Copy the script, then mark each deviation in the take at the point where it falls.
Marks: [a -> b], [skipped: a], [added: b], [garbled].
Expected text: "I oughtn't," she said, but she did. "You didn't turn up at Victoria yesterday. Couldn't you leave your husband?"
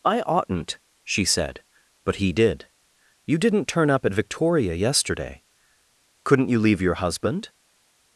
"I oughtn't," she said, but [she -> he] did. "You didn't turn up at Victoria yesterday. Couldn't you leave your husband?"